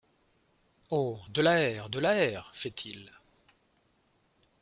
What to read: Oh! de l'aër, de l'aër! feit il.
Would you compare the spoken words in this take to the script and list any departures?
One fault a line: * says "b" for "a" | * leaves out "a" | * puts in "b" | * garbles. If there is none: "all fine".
all fine